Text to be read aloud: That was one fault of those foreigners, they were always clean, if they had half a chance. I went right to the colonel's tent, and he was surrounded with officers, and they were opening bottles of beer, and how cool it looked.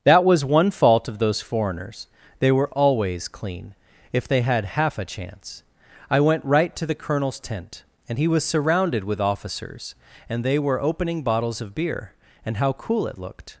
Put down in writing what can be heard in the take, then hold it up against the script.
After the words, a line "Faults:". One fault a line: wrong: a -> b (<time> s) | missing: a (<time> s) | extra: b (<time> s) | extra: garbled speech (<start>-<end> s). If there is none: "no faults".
That was one fault of those foreigners, they were always clean, if they had half a chance. I went right to the colonel's tent, and he was surrounded with officers, and they were opening bottles of beer, and how cool it looked.
Faults:
no faults